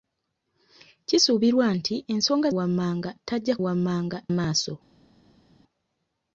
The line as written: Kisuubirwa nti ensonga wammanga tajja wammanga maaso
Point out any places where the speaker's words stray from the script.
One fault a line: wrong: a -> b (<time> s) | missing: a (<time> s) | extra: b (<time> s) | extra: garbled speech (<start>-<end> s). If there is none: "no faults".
no faults